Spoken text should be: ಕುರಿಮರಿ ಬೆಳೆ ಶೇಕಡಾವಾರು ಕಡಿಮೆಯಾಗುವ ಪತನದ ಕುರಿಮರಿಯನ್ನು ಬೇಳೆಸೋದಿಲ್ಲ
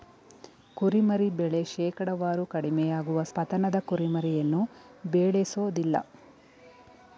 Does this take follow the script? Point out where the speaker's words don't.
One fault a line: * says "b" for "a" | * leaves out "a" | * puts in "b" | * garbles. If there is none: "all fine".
all fine